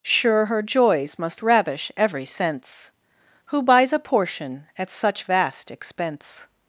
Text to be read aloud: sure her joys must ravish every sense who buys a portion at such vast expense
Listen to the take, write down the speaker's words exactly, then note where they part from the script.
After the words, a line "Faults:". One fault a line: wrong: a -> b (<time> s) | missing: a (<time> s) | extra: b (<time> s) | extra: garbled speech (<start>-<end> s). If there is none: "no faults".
sure her joys must ravish every sense who buys a portion at such vast expense
Faults:
no faults